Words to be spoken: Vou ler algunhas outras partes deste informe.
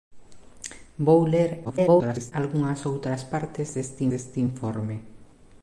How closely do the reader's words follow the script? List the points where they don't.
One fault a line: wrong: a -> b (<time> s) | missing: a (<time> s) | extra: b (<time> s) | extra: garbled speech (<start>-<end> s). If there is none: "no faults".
extra: garbled speech (1.6-2.3 s)
extra: deste (4.1 s)